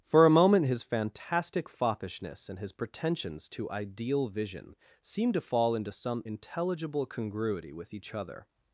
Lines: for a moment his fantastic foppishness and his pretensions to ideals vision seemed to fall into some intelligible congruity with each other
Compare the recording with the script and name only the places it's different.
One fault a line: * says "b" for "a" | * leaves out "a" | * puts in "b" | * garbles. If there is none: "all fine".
* says "ideal" for "ideals"